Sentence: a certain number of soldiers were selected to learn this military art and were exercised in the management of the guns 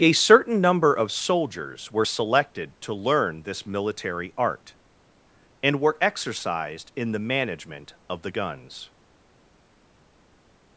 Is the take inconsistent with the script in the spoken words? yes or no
no